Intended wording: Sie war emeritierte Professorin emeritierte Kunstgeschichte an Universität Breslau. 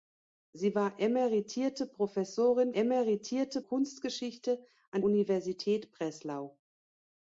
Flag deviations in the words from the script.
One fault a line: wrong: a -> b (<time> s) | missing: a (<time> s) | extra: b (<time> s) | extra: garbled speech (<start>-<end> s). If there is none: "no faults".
no faults